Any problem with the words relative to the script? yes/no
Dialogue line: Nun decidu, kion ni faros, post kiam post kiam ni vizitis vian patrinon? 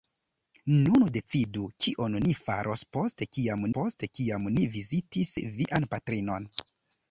no